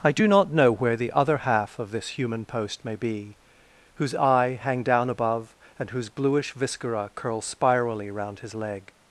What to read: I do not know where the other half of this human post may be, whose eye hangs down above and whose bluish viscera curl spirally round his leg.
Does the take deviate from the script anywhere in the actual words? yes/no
yes